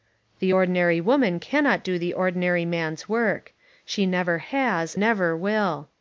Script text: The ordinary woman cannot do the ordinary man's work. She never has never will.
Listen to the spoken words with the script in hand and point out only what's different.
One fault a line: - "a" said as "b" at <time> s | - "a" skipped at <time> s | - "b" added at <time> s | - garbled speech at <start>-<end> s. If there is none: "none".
none